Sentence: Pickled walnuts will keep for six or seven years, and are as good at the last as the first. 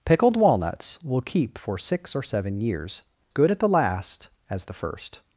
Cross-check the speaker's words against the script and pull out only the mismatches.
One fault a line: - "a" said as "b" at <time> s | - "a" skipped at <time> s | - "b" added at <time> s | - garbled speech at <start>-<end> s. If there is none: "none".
- "and are as" skipped at 3.0 s